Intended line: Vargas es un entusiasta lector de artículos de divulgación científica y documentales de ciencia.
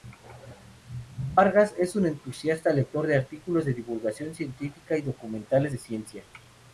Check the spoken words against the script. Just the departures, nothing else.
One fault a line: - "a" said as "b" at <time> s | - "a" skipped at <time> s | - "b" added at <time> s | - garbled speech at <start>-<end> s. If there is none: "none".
none